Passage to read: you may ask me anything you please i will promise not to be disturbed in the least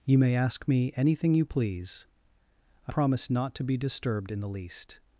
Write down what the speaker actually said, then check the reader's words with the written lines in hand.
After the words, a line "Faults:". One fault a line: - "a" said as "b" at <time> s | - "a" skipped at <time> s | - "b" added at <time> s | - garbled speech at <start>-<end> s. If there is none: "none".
you may ask me anything you please i promise not to be disturbed in the least
Faults:
- "will" skipped at 2.9 s